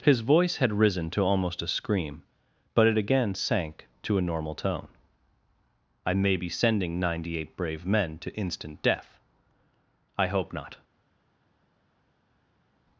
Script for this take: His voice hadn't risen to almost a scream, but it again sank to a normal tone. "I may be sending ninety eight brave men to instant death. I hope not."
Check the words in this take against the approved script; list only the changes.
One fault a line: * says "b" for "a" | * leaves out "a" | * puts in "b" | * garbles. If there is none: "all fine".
* says "had" for "hadn't"